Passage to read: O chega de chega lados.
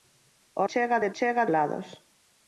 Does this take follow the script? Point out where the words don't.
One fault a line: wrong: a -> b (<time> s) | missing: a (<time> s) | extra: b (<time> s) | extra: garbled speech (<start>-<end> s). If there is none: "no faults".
no faults